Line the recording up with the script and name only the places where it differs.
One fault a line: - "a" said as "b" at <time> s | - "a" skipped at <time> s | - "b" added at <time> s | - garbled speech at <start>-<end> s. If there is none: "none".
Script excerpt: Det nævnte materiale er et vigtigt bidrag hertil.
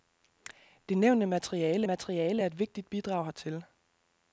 - "materiale" added at 1.8 s